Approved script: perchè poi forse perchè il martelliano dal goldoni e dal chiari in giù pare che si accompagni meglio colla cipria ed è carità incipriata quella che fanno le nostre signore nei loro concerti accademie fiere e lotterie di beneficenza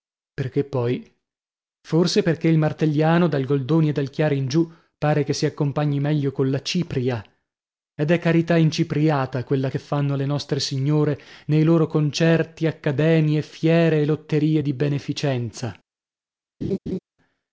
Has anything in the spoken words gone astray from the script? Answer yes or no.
no